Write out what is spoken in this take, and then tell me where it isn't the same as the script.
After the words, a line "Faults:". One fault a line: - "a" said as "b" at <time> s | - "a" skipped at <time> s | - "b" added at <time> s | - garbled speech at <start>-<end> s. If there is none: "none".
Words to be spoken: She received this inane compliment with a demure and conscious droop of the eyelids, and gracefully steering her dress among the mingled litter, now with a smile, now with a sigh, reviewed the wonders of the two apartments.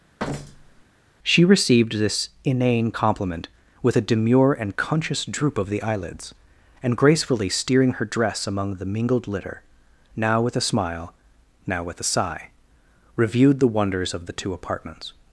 She received this inane compliment with a demure and conscious droop of the eyelids, and gracefully steering her dress among the mingled litter, now with a smile, now with a sigh, reviewed the wonders of the two apartments.
Faults:
none